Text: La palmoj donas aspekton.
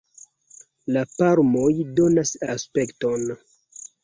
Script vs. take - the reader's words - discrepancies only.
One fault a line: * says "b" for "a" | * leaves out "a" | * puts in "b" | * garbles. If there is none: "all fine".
all fine